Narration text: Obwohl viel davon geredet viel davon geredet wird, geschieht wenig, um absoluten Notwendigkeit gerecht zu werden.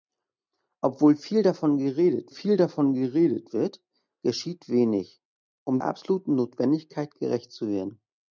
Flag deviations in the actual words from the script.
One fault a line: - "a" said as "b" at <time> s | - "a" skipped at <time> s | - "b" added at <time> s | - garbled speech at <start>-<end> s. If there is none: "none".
none